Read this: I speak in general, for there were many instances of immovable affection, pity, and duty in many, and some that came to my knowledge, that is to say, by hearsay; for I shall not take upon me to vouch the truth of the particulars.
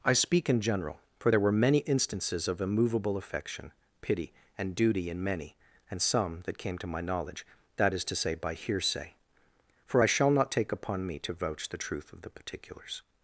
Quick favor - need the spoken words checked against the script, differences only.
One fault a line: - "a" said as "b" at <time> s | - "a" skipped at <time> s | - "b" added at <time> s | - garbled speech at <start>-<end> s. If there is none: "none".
none